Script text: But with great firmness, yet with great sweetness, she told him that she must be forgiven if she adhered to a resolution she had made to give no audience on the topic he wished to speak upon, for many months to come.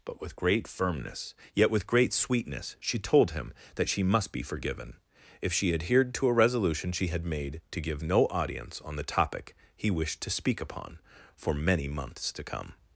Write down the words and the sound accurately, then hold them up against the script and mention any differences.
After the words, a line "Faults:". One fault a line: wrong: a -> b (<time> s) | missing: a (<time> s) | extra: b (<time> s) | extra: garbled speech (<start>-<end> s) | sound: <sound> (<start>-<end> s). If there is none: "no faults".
But with great firmness, yet with great sweetness, she told him that she must be forgiven if she adhered to a resolution she had made to give no audience on the topic he wished to speak upon, for many months to come.
Faults:
no faults